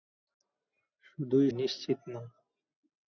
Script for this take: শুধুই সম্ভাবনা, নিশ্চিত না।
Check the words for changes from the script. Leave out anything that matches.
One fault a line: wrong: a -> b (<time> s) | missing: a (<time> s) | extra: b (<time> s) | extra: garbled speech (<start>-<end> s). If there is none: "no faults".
missing: সম্ভাবনা (1.5 s)